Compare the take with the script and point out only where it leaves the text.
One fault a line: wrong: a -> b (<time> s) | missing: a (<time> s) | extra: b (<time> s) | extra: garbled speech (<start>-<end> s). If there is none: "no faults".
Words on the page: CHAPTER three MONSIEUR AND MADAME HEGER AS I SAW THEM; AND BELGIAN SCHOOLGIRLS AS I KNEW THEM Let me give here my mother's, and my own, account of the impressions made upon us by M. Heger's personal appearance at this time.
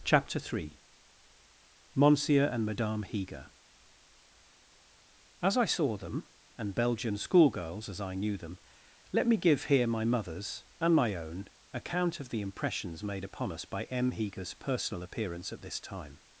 no faults